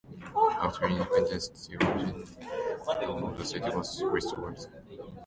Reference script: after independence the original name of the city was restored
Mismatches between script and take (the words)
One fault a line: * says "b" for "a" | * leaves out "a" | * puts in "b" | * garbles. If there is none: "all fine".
* leaves out "name"